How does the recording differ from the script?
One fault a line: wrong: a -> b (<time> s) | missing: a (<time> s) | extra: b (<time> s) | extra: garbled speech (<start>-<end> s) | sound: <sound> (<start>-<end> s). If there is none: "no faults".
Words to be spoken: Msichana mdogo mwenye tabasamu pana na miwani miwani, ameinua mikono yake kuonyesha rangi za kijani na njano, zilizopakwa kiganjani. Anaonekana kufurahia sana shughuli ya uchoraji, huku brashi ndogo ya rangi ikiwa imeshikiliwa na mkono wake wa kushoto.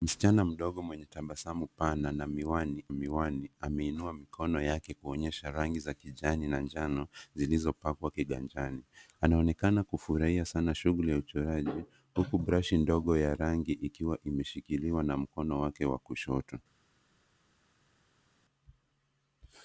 no faults